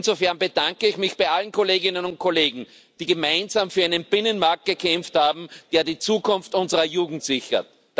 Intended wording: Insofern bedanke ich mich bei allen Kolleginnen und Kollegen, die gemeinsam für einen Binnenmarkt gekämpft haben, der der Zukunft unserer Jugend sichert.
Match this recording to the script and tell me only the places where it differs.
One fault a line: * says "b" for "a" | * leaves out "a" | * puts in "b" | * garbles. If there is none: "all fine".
* says "die" for "der"